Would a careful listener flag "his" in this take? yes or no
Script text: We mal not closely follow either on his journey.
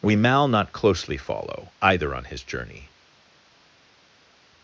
no